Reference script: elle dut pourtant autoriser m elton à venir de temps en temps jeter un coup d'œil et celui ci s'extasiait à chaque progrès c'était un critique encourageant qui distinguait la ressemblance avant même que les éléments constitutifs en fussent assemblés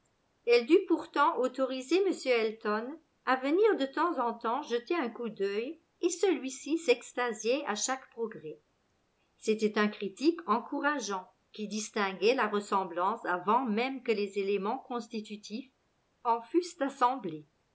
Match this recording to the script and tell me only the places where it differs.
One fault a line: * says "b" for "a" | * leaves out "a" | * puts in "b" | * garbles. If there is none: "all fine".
all fine